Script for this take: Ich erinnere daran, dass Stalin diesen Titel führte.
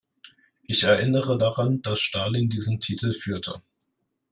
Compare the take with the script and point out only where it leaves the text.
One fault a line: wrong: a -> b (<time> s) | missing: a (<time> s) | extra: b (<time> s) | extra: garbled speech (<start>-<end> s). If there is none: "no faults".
no faults